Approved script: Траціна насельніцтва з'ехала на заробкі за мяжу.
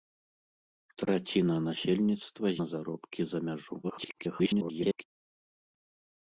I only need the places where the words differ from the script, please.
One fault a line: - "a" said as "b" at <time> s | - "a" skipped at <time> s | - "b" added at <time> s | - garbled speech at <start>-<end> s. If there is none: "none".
- "з'ехала" skipped at 2.5 s
- garbled speech at 3.8-5.0 s